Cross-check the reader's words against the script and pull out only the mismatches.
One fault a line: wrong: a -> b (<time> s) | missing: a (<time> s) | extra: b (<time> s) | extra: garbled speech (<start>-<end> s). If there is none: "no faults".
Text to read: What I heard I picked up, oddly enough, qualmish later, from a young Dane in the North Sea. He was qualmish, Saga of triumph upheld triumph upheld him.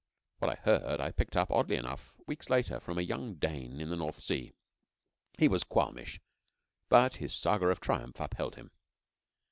wrong: qualmish -> weeks (2.2 s)
extra: but his (6.9 s)
missing: triumph upheld (8.6 s)